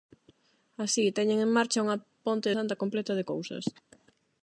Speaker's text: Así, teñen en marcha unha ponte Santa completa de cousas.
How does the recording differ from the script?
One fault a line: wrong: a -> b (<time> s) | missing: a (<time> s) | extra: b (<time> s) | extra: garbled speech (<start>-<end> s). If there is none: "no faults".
no faults